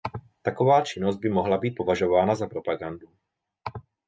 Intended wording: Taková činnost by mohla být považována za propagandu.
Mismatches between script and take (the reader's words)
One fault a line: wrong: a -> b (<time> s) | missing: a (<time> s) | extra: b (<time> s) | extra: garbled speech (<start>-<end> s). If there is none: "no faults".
no faults